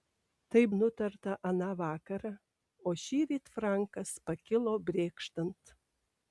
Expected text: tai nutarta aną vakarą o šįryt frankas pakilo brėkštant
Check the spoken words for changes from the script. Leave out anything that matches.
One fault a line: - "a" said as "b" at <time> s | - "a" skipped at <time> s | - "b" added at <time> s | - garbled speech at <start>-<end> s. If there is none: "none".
none